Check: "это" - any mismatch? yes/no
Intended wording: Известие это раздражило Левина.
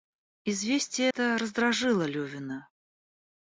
no